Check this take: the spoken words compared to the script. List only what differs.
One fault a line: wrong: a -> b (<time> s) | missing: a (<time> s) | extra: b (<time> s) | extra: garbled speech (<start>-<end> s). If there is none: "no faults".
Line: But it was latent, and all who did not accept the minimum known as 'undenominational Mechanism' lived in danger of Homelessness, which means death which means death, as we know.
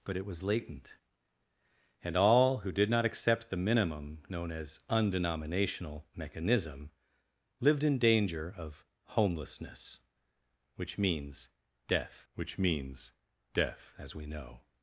no faults